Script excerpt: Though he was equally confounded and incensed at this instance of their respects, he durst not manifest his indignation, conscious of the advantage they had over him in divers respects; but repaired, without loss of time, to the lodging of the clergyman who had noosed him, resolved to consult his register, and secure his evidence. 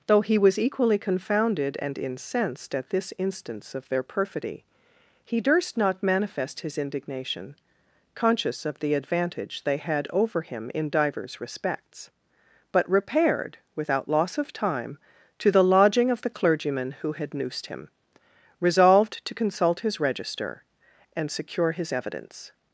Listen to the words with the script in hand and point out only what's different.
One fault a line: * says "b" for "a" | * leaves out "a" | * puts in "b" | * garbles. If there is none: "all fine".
* says "perfidy" for "respects"